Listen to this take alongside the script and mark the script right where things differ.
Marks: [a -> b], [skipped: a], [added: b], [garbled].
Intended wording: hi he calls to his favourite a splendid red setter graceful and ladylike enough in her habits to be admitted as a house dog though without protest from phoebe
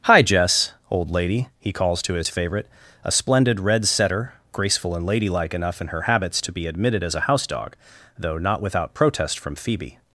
hi [added: jess old lady] he calls to his favourite a splendid red setter graceful and ladylike enough in her habits to be admitted as a house dog though [added: not] without protest from phoebe